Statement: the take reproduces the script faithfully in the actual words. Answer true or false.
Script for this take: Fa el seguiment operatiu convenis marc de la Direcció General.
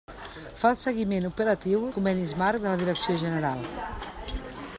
true